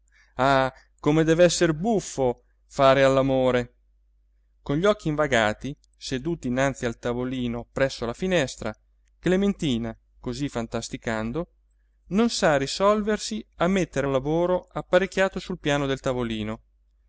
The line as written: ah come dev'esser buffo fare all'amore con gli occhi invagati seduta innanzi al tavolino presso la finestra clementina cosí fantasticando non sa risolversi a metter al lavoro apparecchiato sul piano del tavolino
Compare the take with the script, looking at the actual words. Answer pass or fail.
pass